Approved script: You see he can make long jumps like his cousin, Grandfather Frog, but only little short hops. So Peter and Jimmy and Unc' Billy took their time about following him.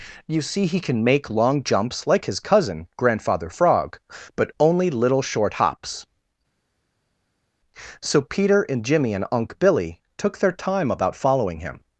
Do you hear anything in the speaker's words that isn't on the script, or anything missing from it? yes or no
no